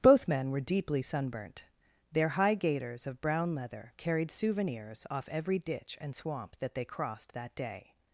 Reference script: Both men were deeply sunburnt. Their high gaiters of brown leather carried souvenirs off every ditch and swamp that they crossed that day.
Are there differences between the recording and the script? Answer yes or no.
no